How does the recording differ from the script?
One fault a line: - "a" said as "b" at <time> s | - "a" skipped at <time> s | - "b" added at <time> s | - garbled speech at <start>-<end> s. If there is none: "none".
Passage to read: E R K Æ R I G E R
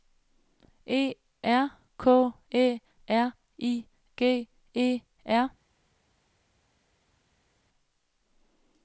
none